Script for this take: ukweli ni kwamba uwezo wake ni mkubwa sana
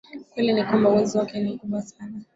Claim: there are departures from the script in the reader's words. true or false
false